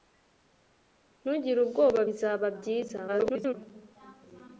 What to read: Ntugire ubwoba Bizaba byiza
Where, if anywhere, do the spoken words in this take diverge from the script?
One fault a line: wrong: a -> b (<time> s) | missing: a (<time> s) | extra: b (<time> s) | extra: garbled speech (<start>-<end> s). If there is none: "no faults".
extra: garbled speech (3.1-3.5 s)